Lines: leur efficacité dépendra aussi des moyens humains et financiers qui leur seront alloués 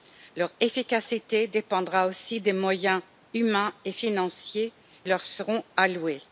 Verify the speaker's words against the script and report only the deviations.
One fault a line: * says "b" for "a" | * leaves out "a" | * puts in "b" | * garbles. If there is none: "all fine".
* leaves out "qui"